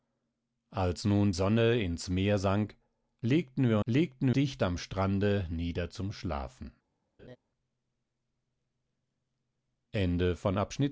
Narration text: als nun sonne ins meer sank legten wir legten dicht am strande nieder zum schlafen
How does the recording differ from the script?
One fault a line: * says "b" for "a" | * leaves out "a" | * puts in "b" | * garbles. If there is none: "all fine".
all fine